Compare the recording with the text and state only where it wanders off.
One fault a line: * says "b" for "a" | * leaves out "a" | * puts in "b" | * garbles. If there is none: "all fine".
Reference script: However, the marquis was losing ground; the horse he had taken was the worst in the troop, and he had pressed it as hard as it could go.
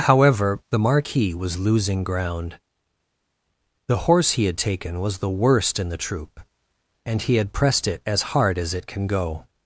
* says "can" for "could"